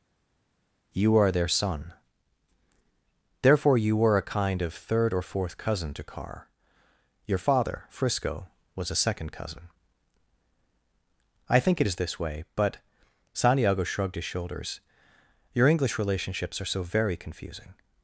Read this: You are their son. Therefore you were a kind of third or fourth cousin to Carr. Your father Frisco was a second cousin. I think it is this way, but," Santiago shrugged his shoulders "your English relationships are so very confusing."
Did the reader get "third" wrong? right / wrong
right